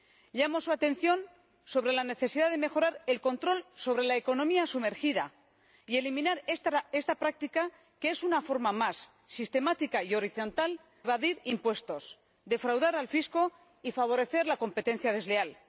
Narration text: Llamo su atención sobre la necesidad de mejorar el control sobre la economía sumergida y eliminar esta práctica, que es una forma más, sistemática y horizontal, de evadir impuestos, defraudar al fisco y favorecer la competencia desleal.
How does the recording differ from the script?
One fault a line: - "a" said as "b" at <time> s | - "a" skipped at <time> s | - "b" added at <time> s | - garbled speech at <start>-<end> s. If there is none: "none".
- "de" skipped at 10.8 s